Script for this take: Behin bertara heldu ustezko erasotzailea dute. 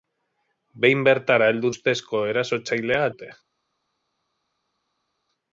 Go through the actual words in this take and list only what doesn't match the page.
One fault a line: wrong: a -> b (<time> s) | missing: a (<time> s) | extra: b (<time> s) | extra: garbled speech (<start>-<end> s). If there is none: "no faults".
no faults